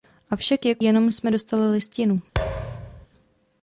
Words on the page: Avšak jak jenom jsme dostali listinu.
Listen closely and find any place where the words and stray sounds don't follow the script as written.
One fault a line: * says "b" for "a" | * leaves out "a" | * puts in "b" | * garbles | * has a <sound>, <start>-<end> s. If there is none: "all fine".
* has a thud, 2.3-3.1 s